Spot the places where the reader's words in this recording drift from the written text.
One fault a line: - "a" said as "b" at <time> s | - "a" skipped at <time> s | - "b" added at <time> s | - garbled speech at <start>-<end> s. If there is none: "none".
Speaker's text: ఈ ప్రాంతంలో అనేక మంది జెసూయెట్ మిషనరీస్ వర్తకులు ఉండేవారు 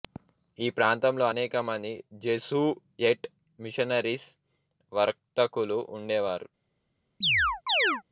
none